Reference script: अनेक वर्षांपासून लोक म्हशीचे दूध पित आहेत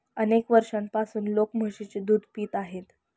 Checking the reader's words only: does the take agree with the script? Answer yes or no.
yes